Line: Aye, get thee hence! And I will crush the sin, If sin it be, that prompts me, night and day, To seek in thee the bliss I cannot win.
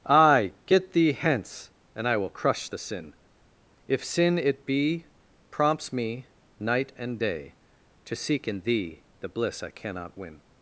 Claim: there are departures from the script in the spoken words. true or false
true